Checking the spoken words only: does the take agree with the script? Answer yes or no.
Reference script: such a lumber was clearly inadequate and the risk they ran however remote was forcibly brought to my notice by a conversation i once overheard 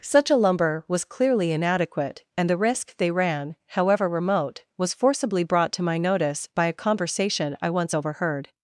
yes